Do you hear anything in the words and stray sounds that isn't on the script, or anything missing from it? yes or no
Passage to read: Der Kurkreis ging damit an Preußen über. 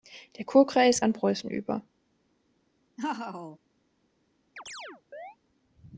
yes